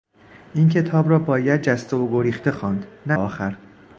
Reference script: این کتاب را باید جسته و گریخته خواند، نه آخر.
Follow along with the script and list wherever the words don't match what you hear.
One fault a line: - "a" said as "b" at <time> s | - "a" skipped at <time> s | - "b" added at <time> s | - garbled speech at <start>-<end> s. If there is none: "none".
none